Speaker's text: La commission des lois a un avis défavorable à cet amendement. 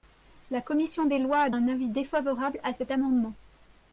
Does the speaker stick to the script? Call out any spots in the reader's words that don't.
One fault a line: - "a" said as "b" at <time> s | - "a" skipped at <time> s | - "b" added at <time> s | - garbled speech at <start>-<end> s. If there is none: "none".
none